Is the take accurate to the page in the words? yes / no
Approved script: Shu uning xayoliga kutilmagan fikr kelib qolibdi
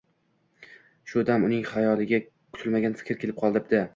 no